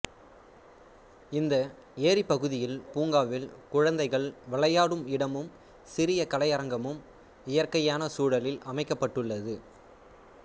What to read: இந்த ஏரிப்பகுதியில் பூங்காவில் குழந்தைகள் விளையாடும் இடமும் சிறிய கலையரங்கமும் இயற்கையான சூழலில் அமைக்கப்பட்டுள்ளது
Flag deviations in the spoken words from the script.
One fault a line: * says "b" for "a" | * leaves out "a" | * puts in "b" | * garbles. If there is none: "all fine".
all fine